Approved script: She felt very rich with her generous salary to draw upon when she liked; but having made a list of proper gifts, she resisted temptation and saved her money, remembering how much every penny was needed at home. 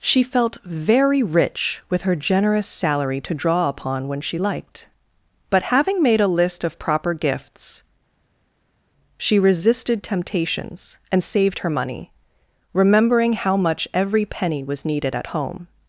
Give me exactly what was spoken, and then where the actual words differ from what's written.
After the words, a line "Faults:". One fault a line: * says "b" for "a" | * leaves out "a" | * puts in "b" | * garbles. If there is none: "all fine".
She felt very rich with her generous salary to draw upon when she liked; but having made a list of proper gifts, she resisted temptations and saved her money, remembering how much every penny was needed at home.
Faults:
* says "temptations" for "temptation"